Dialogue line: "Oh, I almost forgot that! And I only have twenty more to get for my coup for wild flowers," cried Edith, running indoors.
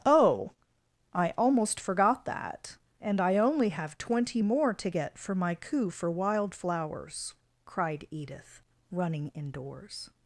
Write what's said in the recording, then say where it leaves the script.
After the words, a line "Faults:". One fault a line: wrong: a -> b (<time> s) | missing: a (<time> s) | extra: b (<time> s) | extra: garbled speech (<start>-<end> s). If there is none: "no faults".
"Oh, I almost forgot that! And I only have twenty more to get for my coup for wild flowers," cried Edith, running indoors.
Faults:
no faults